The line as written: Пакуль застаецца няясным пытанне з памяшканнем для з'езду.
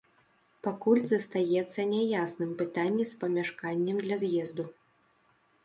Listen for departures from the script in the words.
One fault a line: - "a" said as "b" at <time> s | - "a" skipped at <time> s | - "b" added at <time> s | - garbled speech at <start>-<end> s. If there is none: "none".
none